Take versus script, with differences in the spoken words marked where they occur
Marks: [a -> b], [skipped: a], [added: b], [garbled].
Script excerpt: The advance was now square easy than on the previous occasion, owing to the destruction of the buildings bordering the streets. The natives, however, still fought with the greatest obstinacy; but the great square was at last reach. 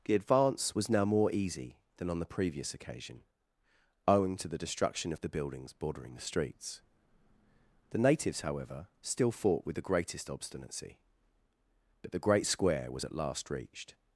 The advance was now [square -> more] easy than on the previous occasion, owing to the destruction of the buildings bordering the streets. The natives, however, still fought with the greatest obstinacy; but the great square was at last [reach. -> reached]